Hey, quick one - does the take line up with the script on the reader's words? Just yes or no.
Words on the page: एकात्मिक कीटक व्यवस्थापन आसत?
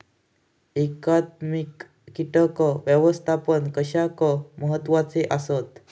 no